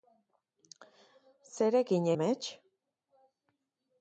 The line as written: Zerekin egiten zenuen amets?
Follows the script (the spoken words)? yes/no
no